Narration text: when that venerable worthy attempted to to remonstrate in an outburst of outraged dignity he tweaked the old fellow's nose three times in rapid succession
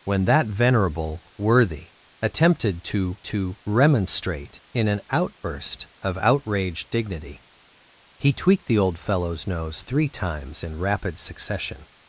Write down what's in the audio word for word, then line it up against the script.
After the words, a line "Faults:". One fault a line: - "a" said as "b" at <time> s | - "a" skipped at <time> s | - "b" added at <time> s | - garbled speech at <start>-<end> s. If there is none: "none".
when that venerable worthy attempted to to remonstrate in an outburst of outraged dignity he tweaked the old fellow's nose three times in rapid succession
Faults:
none